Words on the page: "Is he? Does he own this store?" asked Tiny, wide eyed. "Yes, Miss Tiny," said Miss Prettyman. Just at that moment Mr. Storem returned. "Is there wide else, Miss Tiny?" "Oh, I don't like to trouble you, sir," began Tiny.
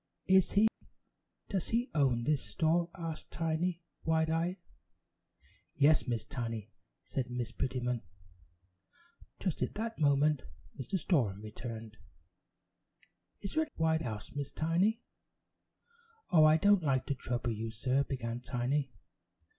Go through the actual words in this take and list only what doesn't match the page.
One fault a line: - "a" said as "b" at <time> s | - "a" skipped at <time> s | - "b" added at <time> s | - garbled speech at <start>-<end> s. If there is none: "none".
none